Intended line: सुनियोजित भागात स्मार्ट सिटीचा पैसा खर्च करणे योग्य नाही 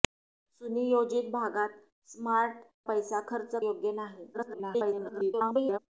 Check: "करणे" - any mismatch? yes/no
yes